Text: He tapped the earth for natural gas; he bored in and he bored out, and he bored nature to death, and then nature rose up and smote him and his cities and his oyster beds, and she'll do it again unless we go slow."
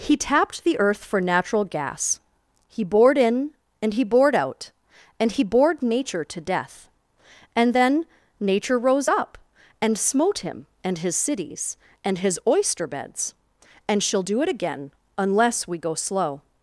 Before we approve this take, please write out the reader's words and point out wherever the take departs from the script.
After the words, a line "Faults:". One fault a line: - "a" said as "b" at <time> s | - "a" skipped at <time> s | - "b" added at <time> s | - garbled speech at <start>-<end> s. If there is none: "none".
He tapped the earth for natural gas; he bored in and he bored out, and he bored nature to death, and then nature rose up and smote him and his cities and his oyster beds, and she'll do it again unless we go slow."
Faults:
none